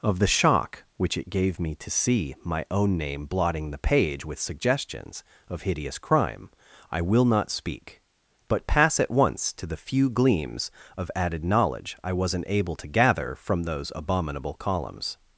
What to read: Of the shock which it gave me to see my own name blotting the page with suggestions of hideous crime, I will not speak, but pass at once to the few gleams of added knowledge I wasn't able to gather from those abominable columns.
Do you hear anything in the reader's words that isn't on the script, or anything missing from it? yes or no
no